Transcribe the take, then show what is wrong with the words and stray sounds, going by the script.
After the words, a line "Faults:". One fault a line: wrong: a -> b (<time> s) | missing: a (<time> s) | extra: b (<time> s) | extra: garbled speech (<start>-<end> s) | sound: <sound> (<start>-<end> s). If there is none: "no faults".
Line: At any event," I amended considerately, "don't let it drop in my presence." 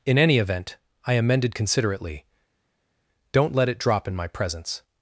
In any event," I amended considerately, "don't let it drop in my presence."
Faults:
wrong: At -> In (0.0 s)